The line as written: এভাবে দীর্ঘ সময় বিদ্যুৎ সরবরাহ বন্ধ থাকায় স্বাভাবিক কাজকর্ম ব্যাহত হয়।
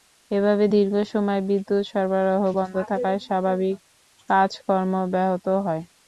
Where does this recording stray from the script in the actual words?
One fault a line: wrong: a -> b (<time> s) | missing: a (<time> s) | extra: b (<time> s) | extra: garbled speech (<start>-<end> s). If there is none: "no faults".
no faults